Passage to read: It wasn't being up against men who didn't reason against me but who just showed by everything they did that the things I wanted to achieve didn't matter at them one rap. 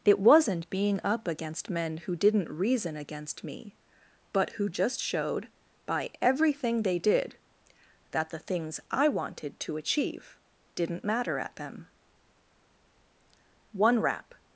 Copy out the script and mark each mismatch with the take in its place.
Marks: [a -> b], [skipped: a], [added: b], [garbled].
It wasn't being up against men who didn't reason against me but who just showed by everything they did that the things I wanted to achieve didn't matter at them one rap.